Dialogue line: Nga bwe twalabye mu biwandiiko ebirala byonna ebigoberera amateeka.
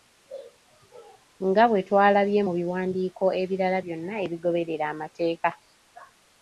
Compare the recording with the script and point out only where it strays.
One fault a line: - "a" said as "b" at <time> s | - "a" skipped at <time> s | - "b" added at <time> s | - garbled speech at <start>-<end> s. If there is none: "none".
none